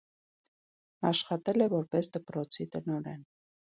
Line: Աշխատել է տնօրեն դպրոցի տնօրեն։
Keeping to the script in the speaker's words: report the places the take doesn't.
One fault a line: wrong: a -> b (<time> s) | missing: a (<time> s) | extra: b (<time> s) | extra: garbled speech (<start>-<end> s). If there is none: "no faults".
wrong: տնօրեն -> որպես (1.7 s)